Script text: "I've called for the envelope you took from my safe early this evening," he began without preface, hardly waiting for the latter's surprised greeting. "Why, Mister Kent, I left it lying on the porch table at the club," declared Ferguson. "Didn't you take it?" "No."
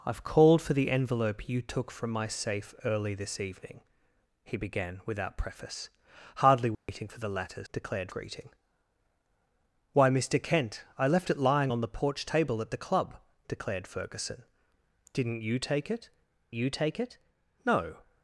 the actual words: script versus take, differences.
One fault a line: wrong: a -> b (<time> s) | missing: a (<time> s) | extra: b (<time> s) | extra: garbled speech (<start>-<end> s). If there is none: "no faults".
wrong: surprised -> declared (7.7 s)
extra: you take it (16.5 s)